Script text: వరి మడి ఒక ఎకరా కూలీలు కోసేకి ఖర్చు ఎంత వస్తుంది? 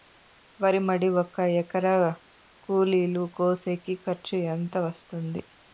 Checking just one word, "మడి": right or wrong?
right